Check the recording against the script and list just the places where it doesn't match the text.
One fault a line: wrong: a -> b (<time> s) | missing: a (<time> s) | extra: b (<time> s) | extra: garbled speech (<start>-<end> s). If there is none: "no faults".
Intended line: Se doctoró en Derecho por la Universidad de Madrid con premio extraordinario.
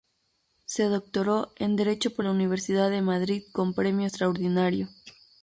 no faults